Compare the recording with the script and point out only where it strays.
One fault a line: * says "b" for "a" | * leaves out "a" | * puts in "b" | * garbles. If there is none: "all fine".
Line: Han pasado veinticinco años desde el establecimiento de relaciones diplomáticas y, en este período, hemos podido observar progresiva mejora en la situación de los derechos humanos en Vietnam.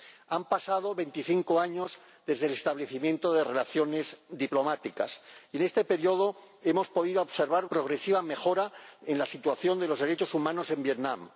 all fine